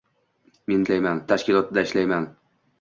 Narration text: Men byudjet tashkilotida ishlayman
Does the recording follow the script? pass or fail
fail